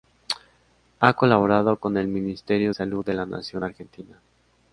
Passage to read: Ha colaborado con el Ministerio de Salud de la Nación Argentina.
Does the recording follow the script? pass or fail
fail